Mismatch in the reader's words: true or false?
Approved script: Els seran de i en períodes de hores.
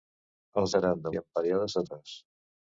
false